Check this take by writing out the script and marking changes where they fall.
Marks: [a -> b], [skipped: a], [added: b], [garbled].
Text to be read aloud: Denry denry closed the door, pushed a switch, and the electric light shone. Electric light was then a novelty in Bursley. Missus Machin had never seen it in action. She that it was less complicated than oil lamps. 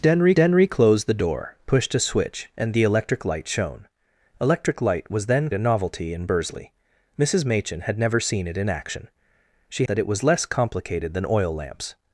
Denry denry closed the door, pushed a switch, and the electric light shone. Electric light was then a novelty in Bursley. Missus Machin had never seen it in action. She that it was less complicated than oil lamps.